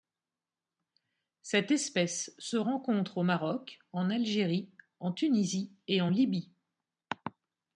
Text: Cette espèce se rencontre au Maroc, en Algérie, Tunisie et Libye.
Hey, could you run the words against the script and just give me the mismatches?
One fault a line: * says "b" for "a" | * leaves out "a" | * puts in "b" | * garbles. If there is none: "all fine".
* puts in "en"
* puts in "en"